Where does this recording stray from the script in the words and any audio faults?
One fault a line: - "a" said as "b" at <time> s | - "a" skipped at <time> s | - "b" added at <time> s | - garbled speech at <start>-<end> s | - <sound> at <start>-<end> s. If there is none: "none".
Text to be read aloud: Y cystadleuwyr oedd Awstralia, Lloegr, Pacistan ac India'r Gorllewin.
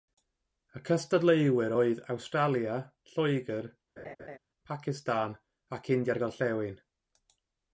- laugh at 4.0-4.4 s